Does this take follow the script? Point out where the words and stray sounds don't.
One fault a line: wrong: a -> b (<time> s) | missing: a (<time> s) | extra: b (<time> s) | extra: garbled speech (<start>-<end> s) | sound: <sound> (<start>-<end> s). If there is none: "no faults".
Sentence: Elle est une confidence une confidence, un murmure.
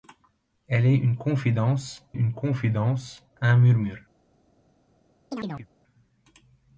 sound: chirp (5.3-5.7 s)